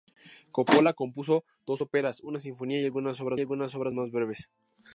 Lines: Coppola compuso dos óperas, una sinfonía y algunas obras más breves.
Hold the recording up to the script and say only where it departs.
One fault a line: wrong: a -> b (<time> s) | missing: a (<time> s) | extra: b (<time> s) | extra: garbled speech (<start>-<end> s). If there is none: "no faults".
extra: algunas obras (3.4 s)